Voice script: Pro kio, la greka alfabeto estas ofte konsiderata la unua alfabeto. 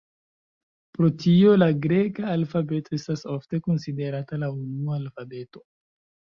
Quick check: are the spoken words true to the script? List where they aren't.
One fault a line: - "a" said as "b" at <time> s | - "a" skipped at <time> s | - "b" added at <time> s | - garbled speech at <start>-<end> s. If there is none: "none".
- "kio" said as "tio" at 1.2 s